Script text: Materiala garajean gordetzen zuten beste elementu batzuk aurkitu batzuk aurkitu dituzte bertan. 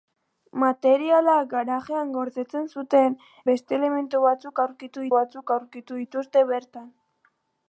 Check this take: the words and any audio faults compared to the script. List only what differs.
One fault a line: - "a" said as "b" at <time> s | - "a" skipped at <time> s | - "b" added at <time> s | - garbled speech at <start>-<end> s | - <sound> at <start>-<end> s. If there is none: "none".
none